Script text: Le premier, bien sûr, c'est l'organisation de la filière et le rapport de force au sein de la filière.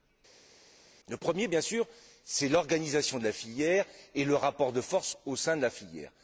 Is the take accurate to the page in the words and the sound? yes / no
yes